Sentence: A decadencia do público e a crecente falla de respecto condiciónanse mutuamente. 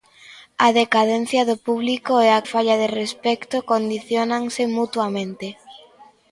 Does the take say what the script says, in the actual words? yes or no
no